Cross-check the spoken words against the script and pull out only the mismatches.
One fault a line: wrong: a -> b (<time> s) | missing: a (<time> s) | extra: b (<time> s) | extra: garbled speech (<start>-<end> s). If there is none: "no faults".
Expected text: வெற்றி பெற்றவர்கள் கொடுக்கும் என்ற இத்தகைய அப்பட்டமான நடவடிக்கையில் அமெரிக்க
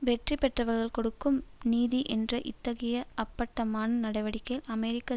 extra: நீதி (1.6 s)